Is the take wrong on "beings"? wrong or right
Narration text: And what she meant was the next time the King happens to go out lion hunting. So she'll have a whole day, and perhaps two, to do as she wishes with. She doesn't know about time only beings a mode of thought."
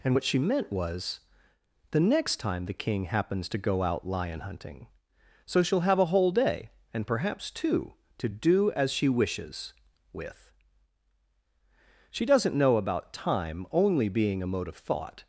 wrong